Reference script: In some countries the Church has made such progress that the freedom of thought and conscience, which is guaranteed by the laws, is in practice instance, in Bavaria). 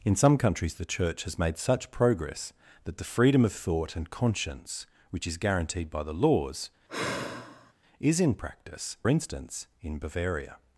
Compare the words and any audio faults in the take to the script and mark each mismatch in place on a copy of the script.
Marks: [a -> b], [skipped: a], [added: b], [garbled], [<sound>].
In some countries the Church has made such progress that the freedom of thought and conscience, which is guaranteed by the laws, [sigh] is in practice instance, in Bavaria).